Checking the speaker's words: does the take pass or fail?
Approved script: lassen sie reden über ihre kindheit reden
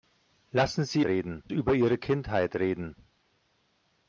pass